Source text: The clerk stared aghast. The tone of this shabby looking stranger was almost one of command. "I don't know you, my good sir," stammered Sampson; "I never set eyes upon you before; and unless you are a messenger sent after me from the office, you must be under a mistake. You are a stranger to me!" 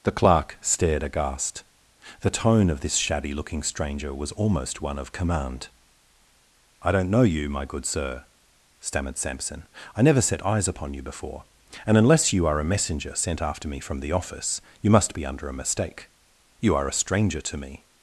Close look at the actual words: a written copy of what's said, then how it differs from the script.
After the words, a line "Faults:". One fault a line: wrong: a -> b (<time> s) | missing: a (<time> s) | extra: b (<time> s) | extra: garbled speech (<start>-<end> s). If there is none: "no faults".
The clerk stared aghast. The tone of this shabby looking stranger was almost one of command. "I don't know you, my good sir," stammered Sampson; "I never set eyes upon you before; and unless you are a messenger sent after me from the office, you must be under a mistake. You are a stranger to me!"
Faults:
no faults